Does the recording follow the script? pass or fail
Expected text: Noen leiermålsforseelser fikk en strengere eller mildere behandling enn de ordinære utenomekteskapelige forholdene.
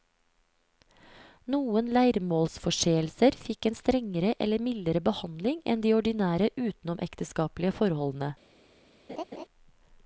pass